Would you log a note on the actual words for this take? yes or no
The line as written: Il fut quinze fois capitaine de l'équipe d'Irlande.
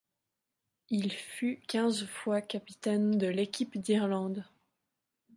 no